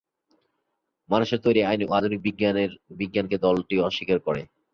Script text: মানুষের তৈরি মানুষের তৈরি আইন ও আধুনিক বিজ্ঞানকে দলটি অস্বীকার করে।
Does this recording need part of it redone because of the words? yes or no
yes